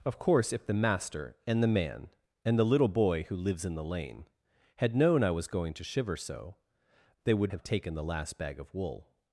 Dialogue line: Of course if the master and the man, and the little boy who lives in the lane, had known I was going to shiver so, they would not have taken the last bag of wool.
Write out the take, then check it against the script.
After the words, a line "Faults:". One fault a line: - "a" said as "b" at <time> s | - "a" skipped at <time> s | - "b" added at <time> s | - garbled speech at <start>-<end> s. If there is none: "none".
Of course if the master and the man, and the little boy who lives in the lane, had known I was going to shiver so, they would have taken the last bag of wool.
Faults:
- "not" skipped at 7.5 s